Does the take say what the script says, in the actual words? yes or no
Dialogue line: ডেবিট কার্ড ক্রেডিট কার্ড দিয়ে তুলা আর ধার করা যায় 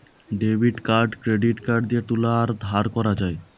yes